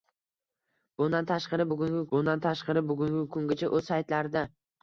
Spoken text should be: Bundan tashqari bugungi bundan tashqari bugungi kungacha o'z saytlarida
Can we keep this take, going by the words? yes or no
yes